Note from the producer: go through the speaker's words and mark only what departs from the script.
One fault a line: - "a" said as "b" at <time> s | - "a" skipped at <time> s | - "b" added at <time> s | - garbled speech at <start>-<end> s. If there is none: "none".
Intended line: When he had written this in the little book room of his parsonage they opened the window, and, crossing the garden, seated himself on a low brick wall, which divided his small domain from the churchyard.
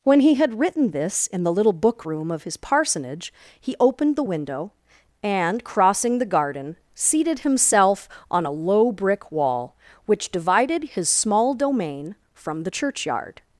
- "they" said as "he" at 3.6 s